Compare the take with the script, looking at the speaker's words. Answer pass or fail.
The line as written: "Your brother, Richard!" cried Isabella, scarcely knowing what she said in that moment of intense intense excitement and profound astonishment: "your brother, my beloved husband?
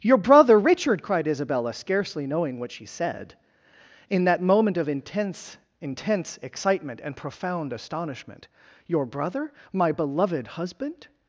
pass